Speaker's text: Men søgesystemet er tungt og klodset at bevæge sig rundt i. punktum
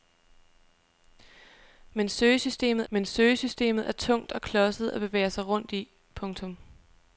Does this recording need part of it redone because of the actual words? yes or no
yes